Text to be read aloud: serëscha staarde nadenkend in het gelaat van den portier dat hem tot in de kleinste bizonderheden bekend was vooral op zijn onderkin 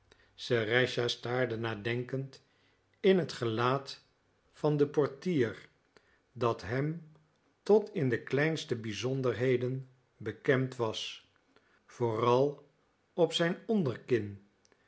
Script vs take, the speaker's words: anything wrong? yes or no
no